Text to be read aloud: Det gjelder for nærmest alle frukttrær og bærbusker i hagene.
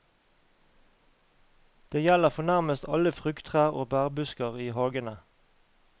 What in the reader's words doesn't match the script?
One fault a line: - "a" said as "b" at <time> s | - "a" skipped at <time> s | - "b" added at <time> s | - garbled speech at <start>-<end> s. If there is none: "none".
none